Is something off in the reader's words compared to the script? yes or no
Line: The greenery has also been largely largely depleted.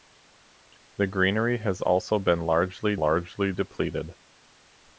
no